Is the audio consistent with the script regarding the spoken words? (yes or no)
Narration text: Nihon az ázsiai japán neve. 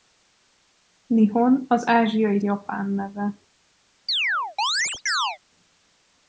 yes